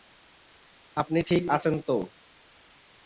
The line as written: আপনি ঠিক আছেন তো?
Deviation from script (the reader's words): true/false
false